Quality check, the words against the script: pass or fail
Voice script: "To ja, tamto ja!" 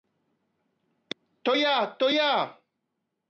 fail